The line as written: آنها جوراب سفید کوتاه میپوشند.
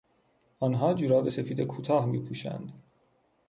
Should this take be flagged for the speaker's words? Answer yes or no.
no